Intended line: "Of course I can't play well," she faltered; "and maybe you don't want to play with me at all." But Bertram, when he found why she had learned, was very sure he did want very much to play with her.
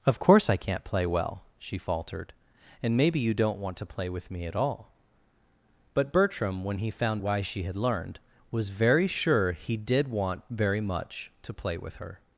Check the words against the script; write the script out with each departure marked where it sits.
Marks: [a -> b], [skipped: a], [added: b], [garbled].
"Of course I can't play well," she faltered; "and maybe you don't want to play with me at all." But Bertram, when he found why she had learned, was very sure he did want very much to play with her.